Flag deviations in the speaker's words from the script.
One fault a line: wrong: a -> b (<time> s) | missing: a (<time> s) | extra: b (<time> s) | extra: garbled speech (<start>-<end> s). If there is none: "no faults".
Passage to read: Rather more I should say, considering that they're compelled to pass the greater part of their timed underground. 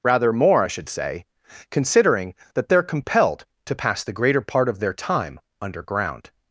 wrong: timed -> time (4.9 s)